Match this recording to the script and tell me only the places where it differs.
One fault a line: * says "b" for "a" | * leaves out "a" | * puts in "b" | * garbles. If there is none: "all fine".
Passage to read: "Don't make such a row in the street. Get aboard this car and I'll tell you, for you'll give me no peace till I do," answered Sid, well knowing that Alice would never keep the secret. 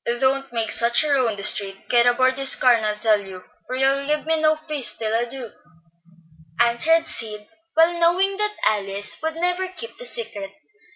all fine